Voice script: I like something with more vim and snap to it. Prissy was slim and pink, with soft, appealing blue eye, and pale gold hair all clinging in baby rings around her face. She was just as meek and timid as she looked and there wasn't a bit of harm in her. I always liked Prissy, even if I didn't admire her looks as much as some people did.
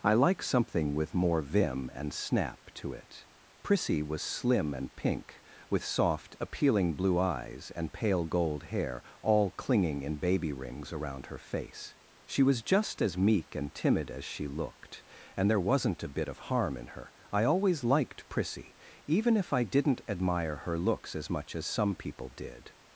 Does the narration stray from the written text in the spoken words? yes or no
yes